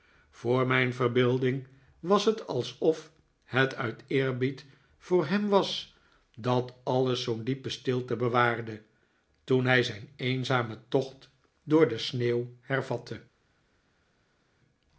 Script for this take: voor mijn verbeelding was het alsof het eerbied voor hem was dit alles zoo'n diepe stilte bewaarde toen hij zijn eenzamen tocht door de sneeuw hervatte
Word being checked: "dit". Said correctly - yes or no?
no